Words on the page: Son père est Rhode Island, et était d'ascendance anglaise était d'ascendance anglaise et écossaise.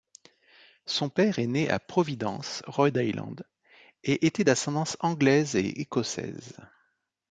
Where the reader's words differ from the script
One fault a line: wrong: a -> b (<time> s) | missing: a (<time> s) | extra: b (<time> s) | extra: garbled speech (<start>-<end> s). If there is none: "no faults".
extra: né à Providence (1.5 s)
missing: était d'ascendance anglaise (5.5 s)